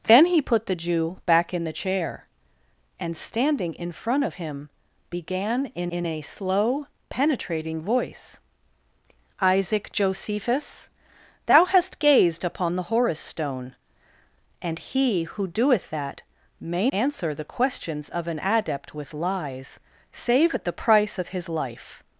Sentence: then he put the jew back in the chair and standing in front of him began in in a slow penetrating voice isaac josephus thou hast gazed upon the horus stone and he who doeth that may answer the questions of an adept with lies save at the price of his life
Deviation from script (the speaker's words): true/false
false